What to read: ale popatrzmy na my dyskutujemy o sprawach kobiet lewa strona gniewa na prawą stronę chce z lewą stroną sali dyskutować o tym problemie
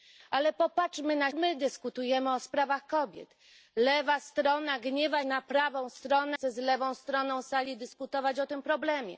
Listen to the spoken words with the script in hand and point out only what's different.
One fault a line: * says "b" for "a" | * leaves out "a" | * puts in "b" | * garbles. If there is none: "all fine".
all fine